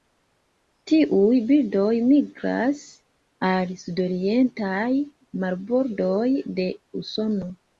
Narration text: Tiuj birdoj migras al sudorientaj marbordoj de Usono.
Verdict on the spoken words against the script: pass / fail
pass